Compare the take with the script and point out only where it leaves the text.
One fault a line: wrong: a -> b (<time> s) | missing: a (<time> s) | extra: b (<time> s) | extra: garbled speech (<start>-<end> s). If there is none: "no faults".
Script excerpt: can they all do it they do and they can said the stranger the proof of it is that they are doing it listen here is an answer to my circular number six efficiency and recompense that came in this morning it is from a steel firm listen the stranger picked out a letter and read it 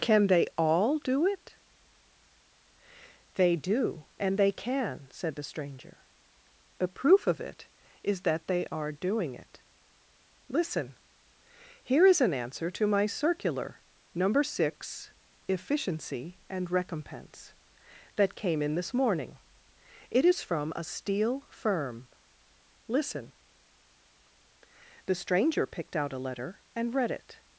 wrong: the -> a (6.8 s)